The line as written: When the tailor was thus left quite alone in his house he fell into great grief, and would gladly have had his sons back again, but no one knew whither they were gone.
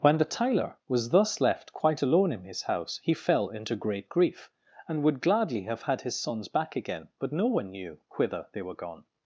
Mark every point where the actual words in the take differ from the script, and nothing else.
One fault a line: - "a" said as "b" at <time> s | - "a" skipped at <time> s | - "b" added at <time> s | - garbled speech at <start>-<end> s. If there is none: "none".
none